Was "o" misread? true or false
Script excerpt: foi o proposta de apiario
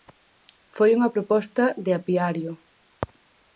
true